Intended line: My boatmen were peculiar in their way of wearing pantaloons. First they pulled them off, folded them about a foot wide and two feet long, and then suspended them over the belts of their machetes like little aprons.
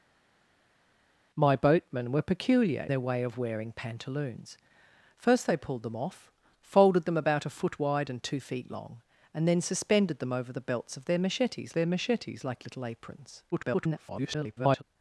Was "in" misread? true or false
true